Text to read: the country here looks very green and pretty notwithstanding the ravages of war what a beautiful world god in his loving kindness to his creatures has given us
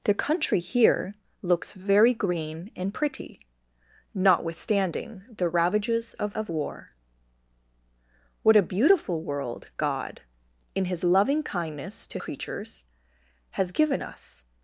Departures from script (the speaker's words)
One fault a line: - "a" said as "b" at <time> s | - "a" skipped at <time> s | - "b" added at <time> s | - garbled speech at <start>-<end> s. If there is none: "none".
- "of" added at 6.3 s
- "his" skipped at 12.2 s